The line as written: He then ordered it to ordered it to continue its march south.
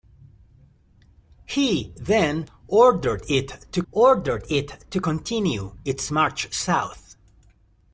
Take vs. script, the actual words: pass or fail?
pass